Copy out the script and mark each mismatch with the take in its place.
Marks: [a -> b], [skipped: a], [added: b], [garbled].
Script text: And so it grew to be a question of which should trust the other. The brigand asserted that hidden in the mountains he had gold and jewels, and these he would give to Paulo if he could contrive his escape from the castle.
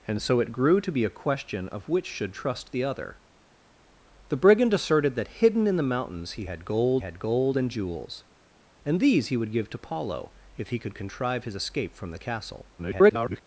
And so it grew to be a question of which should trust the other. The brigand asserted that hidden in the mountains he had gold [added: had gold] and jewels, and these he would give to Paulo if he could contrive his escape from the castle. [garbled]